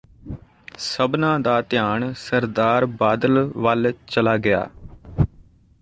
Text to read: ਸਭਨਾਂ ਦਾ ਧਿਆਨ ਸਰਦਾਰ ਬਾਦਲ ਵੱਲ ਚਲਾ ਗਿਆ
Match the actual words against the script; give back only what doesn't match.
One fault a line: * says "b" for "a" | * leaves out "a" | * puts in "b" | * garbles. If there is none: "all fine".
all fine